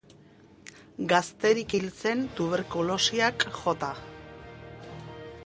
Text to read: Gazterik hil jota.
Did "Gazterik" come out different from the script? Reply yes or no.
no